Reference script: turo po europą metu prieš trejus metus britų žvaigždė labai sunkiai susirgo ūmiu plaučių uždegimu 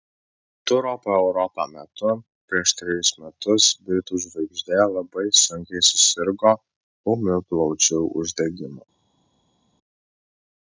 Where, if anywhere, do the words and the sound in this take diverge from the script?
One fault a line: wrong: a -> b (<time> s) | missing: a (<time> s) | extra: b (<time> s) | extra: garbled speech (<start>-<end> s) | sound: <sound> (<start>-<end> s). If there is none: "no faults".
no faults